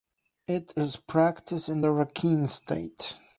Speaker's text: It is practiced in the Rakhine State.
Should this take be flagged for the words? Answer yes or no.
no